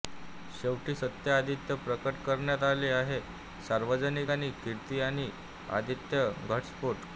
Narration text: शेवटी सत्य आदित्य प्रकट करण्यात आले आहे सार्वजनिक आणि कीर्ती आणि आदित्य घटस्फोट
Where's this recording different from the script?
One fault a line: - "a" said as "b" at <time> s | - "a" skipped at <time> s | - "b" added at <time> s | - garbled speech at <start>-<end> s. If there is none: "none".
none